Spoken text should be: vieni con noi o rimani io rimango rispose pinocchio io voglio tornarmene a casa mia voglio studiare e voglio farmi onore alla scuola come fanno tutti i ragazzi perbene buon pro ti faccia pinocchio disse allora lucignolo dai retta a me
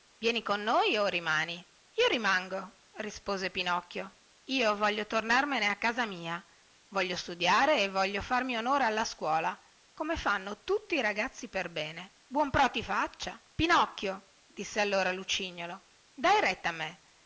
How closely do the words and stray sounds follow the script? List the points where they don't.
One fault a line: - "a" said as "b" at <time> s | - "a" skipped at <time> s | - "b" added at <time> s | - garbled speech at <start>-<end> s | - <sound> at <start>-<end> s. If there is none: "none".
none